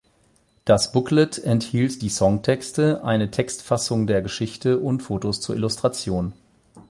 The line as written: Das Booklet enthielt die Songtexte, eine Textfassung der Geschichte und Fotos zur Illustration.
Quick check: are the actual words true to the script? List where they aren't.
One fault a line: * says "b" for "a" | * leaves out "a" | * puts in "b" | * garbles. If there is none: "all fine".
all fine